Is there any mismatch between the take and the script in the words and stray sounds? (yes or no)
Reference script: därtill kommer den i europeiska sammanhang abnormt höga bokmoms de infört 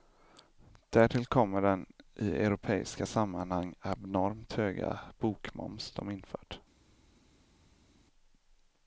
no